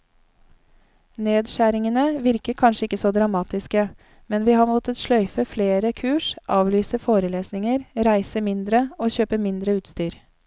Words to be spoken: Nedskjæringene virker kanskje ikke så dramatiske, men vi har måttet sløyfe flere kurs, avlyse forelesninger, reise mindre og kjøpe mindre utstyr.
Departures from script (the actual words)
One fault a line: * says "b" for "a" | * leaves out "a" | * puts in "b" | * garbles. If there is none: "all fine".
all fine